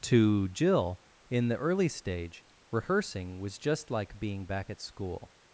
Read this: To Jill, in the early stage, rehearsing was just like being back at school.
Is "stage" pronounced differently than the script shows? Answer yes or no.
no